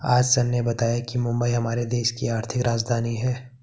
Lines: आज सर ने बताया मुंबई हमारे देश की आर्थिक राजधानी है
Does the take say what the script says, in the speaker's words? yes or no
no